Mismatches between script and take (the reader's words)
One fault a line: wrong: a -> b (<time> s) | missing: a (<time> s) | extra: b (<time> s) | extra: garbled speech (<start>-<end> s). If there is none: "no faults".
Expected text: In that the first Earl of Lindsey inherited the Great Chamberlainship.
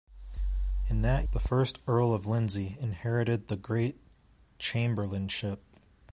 no faults